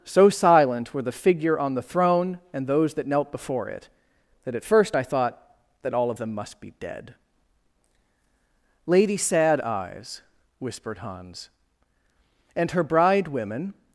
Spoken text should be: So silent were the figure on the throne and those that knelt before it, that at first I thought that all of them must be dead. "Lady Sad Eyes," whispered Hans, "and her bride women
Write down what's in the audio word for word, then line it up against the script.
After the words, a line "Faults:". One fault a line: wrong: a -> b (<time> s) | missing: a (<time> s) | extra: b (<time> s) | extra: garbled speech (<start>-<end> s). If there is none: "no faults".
So silent were the figure on the throne and those that knelt before it, that at first I thought that all of them must be dead. "Lady Sad Eyes," whispered Hans, "and her bride women
Faults:
no faults